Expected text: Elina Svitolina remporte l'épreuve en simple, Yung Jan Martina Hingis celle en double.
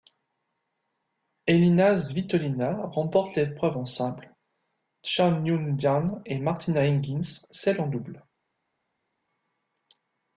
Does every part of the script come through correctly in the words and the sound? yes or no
no